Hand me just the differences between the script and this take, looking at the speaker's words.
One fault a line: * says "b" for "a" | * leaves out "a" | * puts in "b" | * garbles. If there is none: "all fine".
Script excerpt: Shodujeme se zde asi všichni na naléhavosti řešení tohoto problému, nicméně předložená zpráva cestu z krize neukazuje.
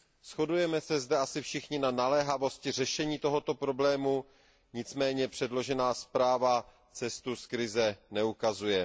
all fine